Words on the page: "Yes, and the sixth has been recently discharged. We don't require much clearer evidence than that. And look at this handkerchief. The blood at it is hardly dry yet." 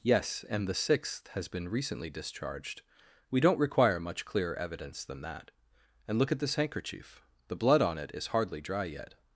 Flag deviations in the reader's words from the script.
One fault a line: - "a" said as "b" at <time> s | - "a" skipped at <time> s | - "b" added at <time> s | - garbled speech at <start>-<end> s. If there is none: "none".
- "at" said as "on" at 7.8 s